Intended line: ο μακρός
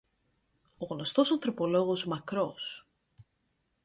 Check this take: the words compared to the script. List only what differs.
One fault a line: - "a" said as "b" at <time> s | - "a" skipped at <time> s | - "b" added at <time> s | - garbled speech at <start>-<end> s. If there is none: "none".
- "γνωστός ανθρωπολόγος" added at 0.8 s